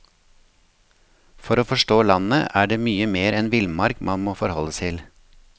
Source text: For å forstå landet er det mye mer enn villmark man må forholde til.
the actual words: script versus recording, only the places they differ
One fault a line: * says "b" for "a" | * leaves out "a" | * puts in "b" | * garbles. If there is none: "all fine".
all fine